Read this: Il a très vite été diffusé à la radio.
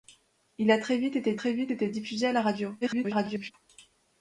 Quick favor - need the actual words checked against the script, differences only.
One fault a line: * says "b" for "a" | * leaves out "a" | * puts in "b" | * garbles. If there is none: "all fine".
* puts in "très vite été"
* garbles